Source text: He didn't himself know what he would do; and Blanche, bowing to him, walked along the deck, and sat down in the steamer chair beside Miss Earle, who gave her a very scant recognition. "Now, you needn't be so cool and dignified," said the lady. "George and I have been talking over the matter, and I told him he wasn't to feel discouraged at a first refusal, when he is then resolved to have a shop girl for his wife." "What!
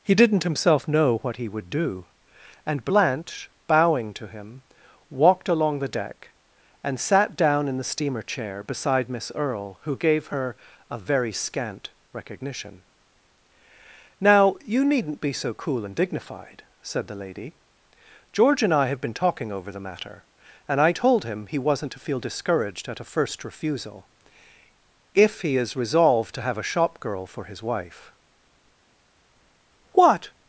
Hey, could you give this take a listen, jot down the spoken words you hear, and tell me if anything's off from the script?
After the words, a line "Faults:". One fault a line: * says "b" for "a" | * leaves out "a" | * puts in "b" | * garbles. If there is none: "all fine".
He didn't himself know what he would do; and Blanche, bowing to him, walked along the deck, and sat down in the steamer chair beside Miss Earle, who gave her a very scant recognition. "Now, you needn't be so cool and dignified," said the lady. "George and I have been talking over the matter, and I told him he wasn't to feel discouraged at a first refusal, if he is resolved to have a shop girl for his wife." "What!
Faults:
* says "if" for "when"
* leaves out "then"